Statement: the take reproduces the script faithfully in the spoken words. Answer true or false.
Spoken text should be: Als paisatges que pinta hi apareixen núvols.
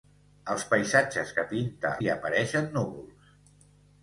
true